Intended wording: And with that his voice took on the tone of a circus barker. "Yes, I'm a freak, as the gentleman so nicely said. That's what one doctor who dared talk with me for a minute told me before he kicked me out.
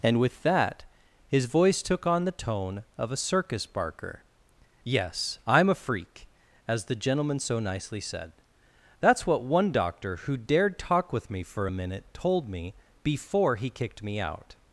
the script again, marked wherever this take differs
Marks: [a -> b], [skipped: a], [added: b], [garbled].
And with that his voice took on the tone of a circus barker. "Yes, I'm a freak, as the gentleman so nicely said. That's what one doctor who dared talk with me for a minute told me before he kicked me out.